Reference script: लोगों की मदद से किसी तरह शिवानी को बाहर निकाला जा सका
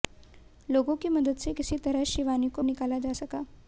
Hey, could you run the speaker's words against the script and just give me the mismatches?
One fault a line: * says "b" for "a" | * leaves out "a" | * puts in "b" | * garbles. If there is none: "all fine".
* leaves out "बाहर"